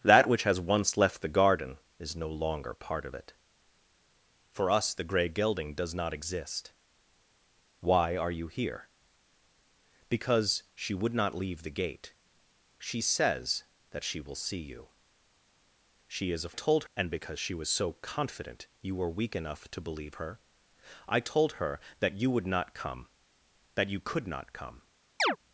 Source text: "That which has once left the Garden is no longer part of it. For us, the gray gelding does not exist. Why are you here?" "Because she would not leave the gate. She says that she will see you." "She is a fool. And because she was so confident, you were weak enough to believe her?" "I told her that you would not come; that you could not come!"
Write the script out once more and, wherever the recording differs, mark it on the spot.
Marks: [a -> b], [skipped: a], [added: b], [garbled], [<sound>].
"That which has once left the Garden is no longer part of it. For us, the gray gelding does not exist. Why are you here?" "Because she would not leave the gate. She says that she will see you." "She is a [fool. -> told] And because she was so confident, you were weak enough to believe her?" "I told her that you would not come; that you could not come!" [chirp]